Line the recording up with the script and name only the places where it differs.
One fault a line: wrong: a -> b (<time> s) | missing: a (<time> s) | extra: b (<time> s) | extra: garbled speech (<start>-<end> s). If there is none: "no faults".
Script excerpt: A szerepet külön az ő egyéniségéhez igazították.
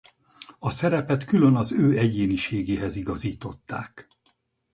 no faults